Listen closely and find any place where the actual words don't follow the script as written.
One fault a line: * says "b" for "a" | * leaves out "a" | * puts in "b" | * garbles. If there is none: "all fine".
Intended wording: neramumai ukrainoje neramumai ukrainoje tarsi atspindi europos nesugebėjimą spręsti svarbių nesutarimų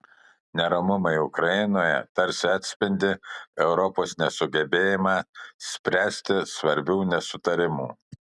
* leaves out "neramumai ukrainoje"